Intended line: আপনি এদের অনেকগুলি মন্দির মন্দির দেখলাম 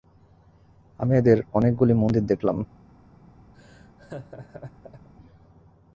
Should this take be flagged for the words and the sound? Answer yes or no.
yes